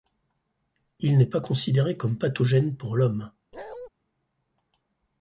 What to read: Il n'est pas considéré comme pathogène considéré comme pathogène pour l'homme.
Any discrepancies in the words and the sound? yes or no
yes